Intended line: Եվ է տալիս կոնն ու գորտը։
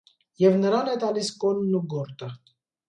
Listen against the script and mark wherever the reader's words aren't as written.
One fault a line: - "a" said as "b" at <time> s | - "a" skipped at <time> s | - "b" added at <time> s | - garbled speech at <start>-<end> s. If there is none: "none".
- "նրան" added at 0.6 s